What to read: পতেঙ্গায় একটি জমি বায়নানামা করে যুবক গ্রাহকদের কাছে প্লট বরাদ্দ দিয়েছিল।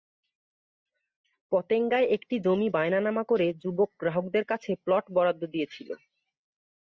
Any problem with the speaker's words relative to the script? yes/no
no